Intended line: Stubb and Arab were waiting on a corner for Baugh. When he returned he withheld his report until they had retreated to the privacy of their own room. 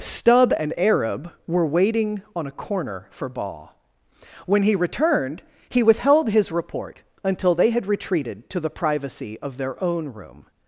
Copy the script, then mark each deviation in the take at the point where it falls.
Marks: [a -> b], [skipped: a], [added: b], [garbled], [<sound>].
Stubb and Arab were waiting on a corner for Baugh. When he returned he withheld his report until they had retreated to the privacy of their own room.